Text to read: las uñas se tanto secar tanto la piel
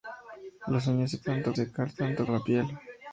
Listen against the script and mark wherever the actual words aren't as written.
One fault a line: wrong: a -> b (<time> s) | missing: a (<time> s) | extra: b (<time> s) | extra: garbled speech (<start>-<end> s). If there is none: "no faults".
no faults